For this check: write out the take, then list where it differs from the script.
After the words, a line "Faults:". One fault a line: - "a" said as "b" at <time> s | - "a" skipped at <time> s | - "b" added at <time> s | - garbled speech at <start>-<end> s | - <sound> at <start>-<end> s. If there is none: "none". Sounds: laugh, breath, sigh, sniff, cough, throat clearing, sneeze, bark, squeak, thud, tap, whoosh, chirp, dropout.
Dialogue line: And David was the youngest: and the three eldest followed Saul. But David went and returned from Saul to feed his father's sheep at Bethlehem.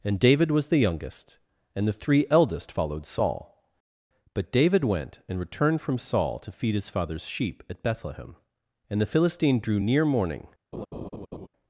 And David was the youngest: and the three eldest followed Saul. But David went and returned from Saul to feed his father's sheep at Bethlehem. And the Philistine drew near morning
Faults:
- "And the Philistine drew near morning" added at 8.9 s
- laugh at 10.7-11.5 s